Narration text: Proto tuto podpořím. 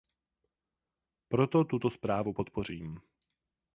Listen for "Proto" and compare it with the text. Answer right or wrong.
right